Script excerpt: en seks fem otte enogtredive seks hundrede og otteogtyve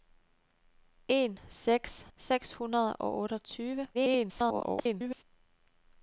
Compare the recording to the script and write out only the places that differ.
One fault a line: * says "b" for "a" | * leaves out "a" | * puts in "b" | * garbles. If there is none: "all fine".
* leaves out "fem otte enogtredive"
* garbles